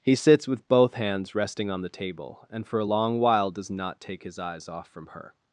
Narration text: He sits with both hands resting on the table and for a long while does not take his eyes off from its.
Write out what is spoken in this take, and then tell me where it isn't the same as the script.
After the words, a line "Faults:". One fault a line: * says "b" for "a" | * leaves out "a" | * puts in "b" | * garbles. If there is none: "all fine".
He sits with both hands resting on the table and for a long while does not take his eyes off from her.
Faults:
* says "her" for "its"